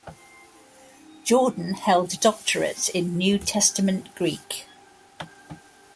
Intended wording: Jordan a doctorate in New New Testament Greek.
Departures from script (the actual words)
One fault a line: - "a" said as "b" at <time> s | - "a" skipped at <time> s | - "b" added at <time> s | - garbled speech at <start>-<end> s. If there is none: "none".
- "held" added at 1.7 s
- "New" skipped at 3.4 s